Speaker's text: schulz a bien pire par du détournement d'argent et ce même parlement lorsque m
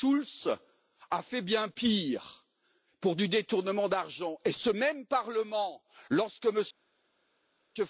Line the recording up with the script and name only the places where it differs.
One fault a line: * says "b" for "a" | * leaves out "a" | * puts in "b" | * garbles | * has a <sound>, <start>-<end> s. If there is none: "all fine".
* puts in "fait"
* says "pour" for "par"